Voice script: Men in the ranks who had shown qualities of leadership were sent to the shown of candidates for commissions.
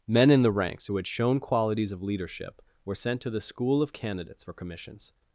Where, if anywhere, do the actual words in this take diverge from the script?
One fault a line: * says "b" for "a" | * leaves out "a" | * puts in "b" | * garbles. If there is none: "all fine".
* says "school" for "shown"